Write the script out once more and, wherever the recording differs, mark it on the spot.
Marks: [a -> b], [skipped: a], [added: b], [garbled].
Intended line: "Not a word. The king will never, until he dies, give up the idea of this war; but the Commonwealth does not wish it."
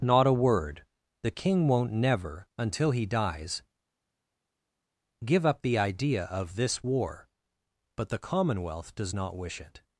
"Not a word. The king [will -> won't] never, until he dies, give up the idea of this war; but the Commonwealth does not wish it."